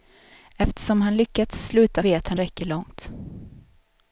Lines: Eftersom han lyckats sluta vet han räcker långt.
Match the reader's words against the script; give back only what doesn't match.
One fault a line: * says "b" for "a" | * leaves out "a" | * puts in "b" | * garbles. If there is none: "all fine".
all fine